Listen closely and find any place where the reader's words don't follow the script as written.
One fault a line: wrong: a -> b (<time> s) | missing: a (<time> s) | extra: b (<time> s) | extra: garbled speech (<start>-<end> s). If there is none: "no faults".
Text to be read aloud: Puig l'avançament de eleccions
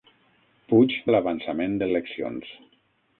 no faults